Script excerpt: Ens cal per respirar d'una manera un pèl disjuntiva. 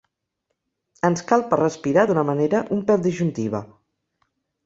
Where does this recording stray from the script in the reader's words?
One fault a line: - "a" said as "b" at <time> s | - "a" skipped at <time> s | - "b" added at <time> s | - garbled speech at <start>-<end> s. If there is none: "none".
none